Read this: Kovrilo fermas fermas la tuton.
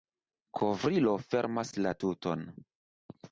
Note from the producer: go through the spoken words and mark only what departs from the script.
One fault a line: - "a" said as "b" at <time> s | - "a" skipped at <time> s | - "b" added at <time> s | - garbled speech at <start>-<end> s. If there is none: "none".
- "fermas" skipped at 1.8 s